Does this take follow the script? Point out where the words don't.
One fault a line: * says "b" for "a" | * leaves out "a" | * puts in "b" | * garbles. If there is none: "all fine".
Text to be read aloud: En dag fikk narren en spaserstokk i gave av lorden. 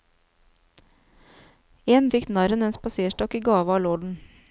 * leaves out "dag"